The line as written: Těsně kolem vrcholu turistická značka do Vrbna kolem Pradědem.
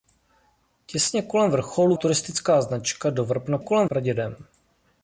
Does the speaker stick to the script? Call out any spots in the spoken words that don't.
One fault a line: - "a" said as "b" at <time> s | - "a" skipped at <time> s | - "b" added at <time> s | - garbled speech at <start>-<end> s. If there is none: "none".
none